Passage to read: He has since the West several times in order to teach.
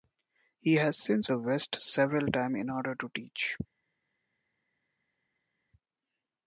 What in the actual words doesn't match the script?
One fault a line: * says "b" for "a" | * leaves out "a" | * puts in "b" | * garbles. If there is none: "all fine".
all fine